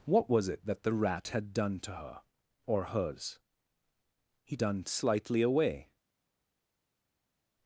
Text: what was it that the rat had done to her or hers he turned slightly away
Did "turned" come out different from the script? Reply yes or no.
yes